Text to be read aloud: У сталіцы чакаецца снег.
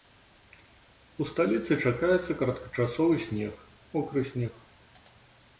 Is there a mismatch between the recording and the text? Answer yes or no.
yes